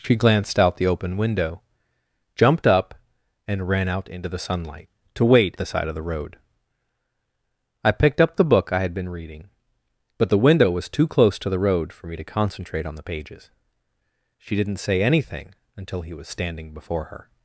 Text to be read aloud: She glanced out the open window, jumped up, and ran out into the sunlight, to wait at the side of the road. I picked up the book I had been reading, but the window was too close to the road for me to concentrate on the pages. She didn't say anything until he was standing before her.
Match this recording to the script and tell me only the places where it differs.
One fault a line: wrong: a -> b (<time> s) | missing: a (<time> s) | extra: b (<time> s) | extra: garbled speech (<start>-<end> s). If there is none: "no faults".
missing: at (5.6 s)